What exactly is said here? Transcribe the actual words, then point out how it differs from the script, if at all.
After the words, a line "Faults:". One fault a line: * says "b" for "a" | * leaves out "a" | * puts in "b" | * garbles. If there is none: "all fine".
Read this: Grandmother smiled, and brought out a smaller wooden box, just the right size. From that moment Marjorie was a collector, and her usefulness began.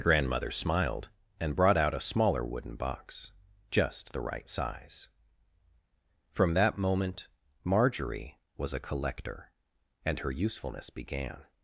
Grandmother smiled, and brought out a smaller wooden box, just the right size. From that moment Marjorie was a collector, and her usefulness began.
Faults:
all fine